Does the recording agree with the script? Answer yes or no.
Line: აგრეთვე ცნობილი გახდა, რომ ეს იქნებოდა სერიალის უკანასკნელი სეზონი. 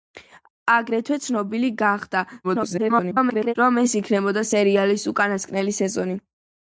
no